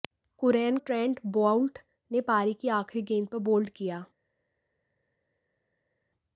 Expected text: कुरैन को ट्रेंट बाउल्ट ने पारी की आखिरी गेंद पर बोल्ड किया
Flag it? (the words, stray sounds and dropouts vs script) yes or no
yes